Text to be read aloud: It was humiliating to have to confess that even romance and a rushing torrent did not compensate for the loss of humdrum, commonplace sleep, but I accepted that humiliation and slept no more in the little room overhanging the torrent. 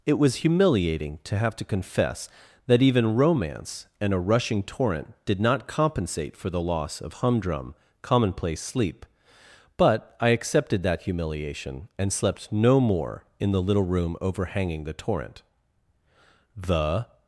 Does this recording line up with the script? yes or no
no